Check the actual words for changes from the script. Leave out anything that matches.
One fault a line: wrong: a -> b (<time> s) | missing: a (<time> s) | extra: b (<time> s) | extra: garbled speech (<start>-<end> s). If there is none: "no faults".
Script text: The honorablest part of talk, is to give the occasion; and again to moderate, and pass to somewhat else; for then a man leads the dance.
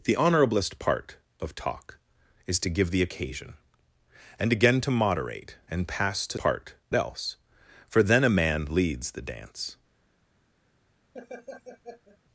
wrong: somewhat -> part (6.4 s)